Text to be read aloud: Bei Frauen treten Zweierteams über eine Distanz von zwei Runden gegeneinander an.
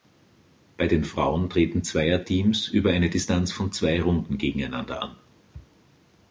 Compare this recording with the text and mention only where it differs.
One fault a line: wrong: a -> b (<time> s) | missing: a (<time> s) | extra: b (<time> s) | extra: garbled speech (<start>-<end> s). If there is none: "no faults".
extra: den (0.9 s)